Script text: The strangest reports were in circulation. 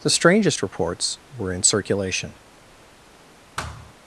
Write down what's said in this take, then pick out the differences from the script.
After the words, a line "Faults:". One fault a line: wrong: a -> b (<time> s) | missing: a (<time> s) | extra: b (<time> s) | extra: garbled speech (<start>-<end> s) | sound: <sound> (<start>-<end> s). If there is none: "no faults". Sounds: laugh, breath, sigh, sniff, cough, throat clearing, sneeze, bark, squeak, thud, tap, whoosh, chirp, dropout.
The strangest reports were in circulation.
Faults:
sound: thud (3.6-3.9 s)